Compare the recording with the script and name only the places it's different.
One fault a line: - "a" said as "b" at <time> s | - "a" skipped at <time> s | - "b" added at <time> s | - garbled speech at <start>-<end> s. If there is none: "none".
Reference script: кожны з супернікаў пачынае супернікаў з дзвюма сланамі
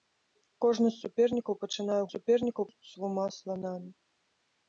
none